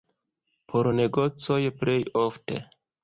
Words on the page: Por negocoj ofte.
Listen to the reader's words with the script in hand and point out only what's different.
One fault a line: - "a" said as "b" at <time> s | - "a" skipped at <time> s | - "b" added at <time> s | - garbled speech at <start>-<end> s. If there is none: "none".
- "plej" added at 1.8 s